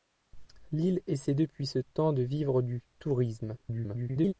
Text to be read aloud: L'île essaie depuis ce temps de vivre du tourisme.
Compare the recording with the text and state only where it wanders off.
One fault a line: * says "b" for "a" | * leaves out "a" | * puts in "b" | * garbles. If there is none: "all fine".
* garbles